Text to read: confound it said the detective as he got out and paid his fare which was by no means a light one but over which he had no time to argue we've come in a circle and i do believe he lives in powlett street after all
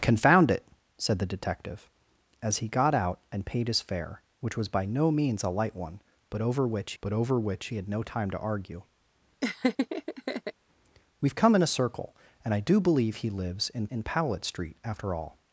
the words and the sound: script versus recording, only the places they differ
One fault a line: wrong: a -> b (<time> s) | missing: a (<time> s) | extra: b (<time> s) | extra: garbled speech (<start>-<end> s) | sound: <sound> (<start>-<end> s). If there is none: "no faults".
extra: but over which (7.0 s)
sound: laugh (9.4-10.5 s)
extra: in (13.9 s)